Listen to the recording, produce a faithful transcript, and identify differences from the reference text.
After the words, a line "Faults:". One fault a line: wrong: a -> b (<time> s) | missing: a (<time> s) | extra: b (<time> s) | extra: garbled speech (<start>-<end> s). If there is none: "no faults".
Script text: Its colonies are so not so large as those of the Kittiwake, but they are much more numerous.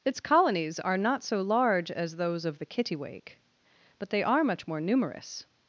Its colonies are not so large as those of the Kittiwake, but they are much more numerous.
Faults:
missing: so (1.0 s)